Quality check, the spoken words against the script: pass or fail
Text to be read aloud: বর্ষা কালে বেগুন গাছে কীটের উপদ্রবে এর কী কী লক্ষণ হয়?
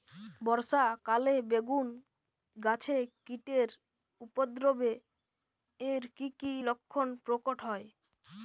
fail